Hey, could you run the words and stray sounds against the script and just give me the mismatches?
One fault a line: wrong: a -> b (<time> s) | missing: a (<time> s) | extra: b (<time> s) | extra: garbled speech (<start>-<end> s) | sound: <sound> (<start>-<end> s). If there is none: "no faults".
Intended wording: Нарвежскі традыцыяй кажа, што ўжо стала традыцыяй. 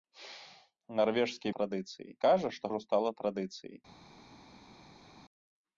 no faults